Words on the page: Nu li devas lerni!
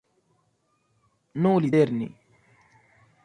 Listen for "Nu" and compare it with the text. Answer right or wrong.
right